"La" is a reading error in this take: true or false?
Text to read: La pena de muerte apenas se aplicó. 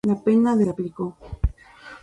false